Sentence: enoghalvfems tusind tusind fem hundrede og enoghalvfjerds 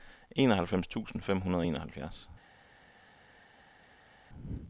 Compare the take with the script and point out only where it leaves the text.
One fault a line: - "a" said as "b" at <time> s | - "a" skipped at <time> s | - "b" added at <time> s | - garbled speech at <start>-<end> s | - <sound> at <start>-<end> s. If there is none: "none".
- "tusind" skipped at 1.2 s